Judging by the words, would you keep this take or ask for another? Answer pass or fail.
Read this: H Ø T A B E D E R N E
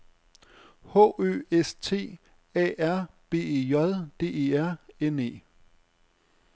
fail